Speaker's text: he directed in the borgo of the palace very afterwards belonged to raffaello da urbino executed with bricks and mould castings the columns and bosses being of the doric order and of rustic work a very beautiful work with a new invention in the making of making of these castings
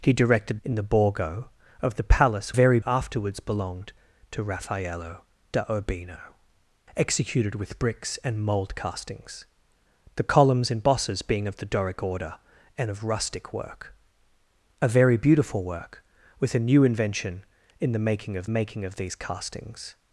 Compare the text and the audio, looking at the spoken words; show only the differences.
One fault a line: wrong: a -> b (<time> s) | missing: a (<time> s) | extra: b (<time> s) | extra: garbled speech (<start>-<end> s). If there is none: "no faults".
no faults